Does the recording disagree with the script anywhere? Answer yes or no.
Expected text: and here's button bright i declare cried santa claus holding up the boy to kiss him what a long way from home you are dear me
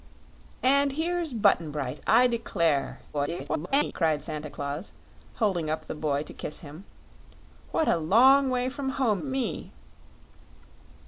yes